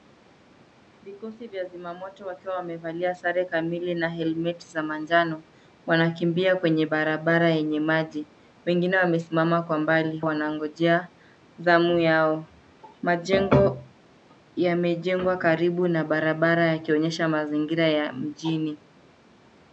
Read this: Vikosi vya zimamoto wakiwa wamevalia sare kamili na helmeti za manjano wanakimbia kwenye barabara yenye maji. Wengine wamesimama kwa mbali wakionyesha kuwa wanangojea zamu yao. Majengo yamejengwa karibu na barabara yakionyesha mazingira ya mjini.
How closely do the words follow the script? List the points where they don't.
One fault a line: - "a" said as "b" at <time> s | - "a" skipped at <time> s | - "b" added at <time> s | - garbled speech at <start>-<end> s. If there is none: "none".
- "wakionyesha kuwa" skipped at 10.2 s